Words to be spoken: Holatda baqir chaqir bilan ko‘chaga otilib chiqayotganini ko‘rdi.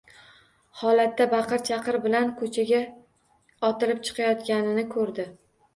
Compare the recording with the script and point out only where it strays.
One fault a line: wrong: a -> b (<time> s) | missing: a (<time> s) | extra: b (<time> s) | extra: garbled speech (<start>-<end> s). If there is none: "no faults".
no faults